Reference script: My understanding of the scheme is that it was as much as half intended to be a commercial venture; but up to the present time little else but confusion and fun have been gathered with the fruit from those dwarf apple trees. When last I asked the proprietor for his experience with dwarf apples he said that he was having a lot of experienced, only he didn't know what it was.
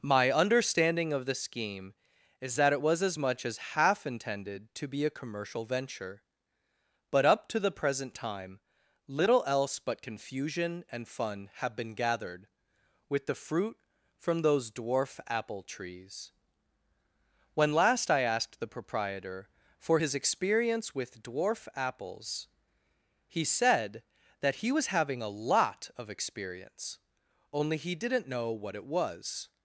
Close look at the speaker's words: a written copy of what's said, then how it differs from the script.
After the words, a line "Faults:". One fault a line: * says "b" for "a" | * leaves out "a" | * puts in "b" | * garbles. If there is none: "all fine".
My understanding of the scheme is that it was as much as half intended to be a commercial venture; but up to the present time little else but confusion and fun have been gathered with the fruit from those dwarf apple trees. When last I asked the proprietor for his experience with dwarf apples he said that he was having a lot of experience, only he didn't know what it was.
Faults:
* says "experience" for "experienced"